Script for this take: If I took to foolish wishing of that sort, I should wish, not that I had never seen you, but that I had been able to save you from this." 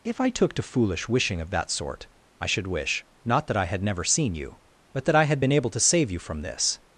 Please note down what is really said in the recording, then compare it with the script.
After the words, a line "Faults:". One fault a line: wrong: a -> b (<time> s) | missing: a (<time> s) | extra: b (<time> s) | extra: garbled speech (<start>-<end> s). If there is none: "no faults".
If I took to foolish wishing of that sort, I should wish, not that I had never seen you, but that I had been able to save you from this."
Faults:
no faults